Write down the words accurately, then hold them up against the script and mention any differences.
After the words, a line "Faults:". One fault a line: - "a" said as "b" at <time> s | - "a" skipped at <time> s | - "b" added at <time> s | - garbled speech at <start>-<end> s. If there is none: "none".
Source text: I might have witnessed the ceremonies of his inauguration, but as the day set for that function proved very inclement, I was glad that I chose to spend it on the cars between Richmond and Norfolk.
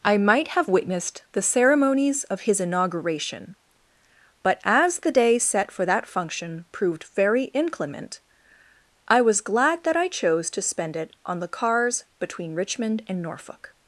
I might have witnessed the ceremonies of his inauguration, but as the day set for that function proved very inclement, I was glad that I chose to spend it on the cars between Richmond and Norfolk.
Faults:
none